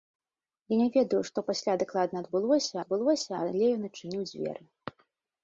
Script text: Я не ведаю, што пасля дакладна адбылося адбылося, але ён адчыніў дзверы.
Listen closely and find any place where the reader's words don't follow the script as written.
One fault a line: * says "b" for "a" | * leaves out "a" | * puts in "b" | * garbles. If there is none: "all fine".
all fine